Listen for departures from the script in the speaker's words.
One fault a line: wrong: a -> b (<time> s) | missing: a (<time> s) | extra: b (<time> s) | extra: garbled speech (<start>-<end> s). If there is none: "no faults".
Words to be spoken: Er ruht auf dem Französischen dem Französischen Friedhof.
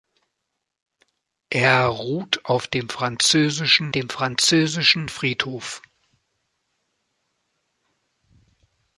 no faults